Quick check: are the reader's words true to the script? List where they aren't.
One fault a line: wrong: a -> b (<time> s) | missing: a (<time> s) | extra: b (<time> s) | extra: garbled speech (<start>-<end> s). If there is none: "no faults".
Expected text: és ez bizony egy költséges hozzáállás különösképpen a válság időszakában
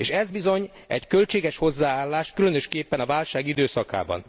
no faults